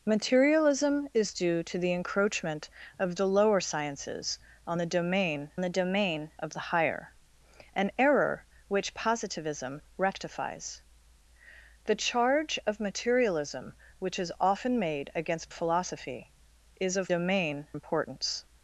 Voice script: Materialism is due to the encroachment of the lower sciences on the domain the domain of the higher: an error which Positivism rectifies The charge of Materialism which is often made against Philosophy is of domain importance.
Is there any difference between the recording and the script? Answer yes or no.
no